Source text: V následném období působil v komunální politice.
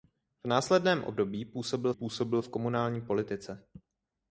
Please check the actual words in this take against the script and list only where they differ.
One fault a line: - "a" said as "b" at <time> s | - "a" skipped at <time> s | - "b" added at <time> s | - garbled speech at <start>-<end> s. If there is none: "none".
- "působil" added at 1.9 s